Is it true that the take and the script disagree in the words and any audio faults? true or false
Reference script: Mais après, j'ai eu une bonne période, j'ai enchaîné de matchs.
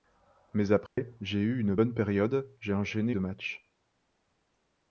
true